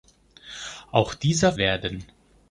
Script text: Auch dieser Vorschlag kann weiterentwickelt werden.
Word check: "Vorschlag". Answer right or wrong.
wrong